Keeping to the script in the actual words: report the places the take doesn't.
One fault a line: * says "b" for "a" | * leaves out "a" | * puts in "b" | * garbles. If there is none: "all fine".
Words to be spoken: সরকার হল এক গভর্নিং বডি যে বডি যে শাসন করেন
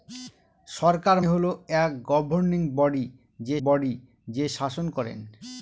all fine